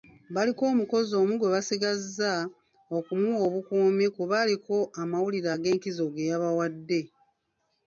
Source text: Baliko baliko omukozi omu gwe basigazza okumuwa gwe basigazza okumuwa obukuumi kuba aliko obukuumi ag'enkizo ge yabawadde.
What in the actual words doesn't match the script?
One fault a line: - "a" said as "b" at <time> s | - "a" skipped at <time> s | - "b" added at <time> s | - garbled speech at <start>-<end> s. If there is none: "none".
- "baliko" skipped at 0.6 s
- "gwe basigazza okumuwa" skipped at 3.4 s
- "obukuumi" said as "amawulire" at 5.0 s